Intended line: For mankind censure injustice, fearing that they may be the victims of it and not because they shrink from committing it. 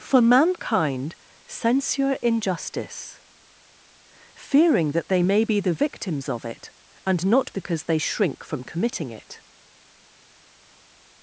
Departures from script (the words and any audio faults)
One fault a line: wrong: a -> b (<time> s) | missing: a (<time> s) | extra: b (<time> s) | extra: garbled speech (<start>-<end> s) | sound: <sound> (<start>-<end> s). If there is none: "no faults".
no faults